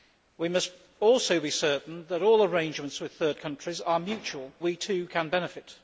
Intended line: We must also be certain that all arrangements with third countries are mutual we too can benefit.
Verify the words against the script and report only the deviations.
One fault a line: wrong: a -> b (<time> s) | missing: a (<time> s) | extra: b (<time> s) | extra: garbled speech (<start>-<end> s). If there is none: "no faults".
no faults